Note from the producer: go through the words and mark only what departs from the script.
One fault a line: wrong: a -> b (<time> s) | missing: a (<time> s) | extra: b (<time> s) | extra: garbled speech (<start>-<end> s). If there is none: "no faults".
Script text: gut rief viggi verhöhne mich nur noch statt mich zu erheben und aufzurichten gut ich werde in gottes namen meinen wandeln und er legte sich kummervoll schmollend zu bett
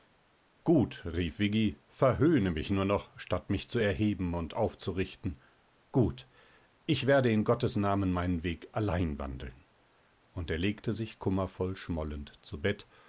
extra: weg allein (8.4 s)